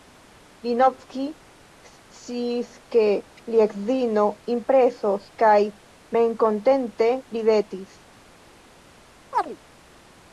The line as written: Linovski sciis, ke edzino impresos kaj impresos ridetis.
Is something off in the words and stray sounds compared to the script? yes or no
yes